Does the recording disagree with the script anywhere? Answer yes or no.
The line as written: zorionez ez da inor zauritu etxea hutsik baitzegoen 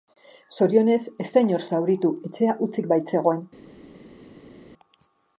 no